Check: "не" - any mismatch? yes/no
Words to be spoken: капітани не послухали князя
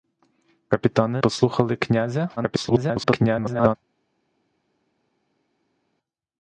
yes